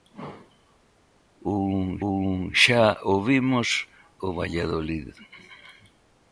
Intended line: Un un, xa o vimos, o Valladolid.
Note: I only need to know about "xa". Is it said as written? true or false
true